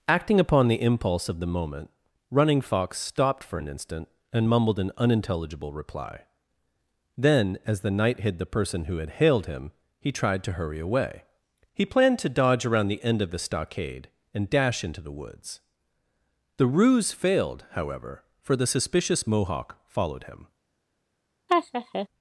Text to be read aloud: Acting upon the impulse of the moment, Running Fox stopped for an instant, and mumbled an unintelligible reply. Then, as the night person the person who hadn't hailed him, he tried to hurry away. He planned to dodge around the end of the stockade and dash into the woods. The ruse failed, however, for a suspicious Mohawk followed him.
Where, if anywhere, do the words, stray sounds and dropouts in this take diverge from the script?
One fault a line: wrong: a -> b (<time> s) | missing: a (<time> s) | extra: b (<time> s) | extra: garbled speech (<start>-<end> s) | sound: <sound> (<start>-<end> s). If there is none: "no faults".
wrong: person -> hid (8.2 s)
wrong: hadn't -> had (9.0 s)
wrong: a -> the (18.6 s)
sound: laugh (21.5-22.1 s)